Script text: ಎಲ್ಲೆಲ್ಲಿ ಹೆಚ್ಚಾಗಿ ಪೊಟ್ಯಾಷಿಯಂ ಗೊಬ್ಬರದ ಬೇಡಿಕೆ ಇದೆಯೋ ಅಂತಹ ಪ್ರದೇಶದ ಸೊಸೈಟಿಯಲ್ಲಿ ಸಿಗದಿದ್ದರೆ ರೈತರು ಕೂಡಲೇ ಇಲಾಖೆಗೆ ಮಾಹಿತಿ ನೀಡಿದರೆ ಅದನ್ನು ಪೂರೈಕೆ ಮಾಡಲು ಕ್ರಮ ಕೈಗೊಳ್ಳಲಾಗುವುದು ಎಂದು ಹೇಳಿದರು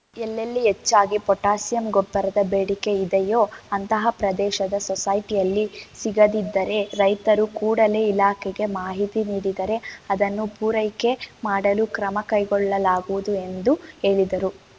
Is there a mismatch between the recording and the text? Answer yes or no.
no